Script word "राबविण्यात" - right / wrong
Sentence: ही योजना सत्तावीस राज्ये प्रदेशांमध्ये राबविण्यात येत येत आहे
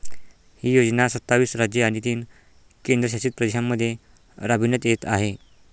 right